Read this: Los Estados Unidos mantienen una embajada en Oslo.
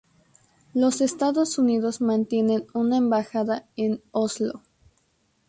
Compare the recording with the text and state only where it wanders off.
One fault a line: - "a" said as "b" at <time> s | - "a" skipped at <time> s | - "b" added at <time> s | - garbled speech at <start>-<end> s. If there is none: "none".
none